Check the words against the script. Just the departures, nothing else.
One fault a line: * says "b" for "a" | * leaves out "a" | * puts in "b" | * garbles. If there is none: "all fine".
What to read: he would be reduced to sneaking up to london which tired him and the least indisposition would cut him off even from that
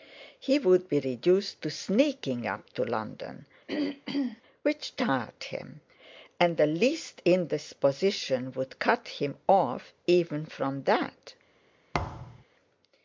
all fine